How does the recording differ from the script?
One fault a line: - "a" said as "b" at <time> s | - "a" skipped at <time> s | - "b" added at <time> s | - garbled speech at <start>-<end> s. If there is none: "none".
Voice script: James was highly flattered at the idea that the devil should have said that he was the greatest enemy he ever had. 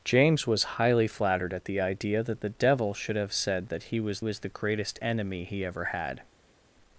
- "was" added at 4.2 s